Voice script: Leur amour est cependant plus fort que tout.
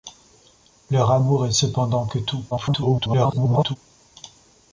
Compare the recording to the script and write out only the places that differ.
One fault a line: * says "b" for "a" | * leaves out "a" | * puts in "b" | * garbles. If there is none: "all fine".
* leaves out "plus fort"
* garbles